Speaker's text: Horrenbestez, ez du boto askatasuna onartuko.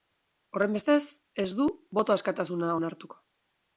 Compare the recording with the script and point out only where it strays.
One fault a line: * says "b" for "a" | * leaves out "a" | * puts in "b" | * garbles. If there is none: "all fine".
all fine